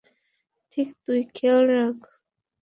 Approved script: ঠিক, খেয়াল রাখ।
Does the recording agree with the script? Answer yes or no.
no